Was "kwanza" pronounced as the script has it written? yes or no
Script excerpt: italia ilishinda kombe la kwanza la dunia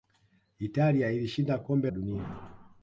no